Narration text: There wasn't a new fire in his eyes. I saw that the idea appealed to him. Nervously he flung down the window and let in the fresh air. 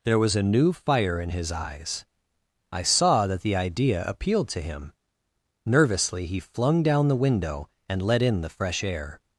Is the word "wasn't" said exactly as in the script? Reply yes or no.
no